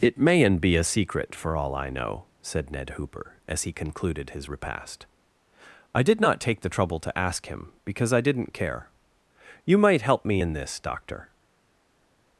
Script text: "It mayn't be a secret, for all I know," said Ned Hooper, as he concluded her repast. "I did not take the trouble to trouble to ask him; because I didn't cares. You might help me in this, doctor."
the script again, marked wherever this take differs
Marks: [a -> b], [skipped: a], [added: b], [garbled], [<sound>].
"It mayn't be a secret, for all I know," said Ned Hooper, as he concluded [her -> his] repast. "I did not take the trouble to [skipped: trouble to] ask him; because I didn't [cares. -> care] You might help me in this, doctor."